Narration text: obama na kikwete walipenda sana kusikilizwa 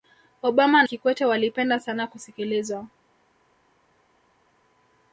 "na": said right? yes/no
no